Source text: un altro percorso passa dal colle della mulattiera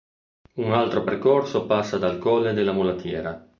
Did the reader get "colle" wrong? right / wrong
right